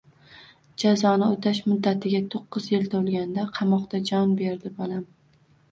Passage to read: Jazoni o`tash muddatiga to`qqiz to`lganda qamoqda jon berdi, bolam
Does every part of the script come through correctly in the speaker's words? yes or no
no